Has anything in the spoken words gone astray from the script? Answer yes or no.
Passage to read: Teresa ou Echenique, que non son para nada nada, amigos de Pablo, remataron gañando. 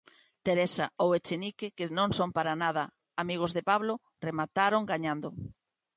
yes